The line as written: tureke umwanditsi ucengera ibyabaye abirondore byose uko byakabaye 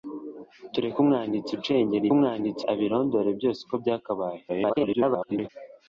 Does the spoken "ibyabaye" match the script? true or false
false